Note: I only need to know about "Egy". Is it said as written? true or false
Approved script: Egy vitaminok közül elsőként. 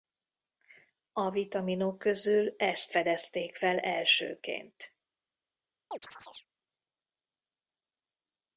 false